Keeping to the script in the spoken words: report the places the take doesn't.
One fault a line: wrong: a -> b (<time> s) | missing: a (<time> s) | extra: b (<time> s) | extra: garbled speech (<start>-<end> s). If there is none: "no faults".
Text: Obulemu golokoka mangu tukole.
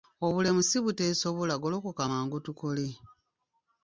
extra: si buteesobola (0.7 s)